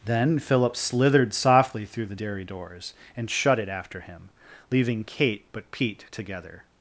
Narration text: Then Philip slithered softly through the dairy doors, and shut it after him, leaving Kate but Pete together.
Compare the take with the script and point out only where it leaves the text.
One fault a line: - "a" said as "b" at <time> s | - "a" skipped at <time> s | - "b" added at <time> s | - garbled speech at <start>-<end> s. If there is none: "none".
none